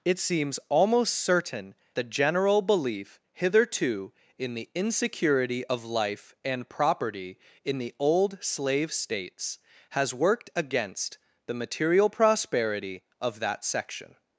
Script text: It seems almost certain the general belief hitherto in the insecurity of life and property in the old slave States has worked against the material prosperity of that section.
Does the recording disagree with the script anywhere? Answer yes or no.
no